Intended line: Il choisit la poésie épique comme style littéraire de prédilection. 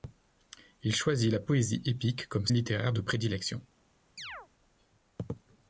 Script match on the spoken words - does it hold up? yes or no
no